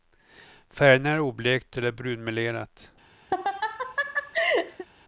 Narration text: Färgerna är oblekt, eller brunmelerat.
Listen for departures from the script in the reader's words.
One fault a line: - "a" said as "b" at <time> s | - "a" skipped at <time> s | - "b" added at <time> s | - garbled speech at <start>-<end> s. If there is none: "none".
none